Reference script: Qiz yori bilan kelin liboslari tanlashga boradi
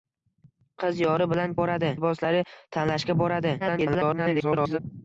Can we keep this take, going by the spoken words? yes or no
no